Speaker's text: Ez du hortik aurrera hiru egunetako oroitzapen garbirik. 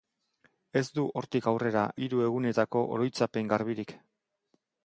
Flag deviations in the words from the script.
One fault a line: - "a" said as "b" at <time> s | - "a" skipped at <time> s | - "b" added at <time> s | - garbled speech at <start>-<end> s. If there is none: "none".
none